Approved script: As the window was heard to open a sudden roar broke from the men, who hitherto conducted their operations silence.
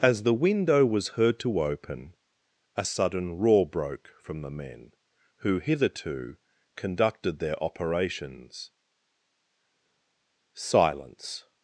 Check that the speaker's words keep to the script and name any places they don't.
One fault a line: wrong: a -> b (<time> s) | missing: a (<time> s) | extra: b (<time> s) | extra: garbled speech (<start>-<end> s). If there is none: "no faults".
no faults